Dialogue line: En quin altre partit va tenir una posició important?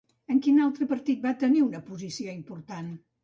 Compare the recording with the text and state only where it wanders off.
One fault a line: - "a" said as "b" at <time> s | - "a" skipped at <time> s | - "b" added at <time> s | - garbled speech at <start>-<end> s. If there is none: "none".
none